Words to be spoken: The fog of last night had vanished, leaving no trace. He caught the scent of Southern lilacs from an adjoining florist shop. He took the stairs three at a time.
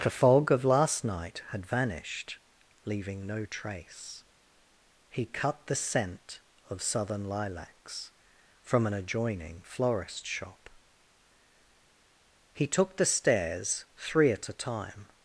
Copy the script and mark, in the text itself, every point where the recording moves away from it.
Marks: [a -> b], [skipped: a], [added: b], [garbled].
The fog of last night had vanished, leaving no trace. He [caught -> cut] the scent of Southern lilacs from an adjoining florist shop. He took the stairs three at a time.